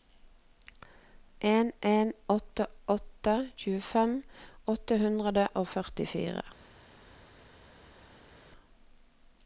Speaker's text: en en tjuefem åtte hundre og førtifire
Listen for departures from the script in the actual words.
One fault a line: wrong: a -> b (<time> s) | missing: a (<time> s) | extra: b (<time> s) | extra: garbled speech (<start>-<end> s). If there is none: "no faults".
extra: åtte åtte (2.4 s)